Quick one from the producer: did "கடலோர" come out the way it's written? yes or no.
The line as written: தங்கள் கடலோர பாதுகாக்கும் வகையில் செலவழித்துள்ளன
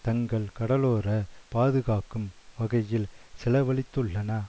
yes